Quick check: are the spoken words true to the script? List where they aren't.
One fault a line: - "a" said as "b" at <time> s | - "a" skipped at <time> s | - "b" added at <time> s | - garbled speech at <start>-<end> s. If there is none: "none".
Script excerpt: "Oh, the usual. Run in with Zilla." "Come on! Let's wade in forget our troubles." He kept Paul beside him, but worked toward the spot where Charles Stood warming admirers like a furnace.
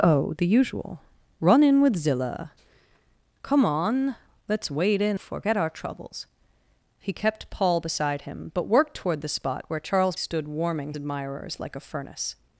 none